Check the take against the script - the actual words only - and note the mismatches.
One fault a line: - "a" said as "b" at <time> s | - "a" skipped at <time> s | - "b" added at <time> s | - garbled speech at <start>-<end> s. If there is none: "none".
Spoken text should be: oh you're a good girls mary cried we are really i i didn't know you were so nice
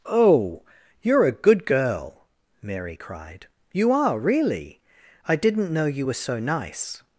- "girls" said as "girl" at 1.6 s
- "we" said as "you" at 3.7 s
- "i" skipped at 5.4 s